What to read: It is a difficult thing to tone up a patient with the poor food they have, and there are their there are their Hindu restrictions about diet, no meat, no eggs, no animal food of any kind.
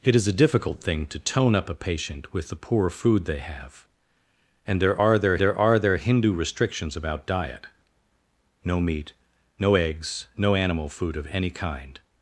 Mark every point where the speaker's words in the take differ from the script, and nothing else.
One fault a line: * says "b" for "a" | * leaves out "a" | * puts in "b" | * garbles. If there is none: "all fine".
all fine